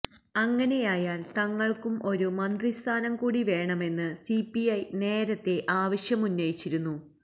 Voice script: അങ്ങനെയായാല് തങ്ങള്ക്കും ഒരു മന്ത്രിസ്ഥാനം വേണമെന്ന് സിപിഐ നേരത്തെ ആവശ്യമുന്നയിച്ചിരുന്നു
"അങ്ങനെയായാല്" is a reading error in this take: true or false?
false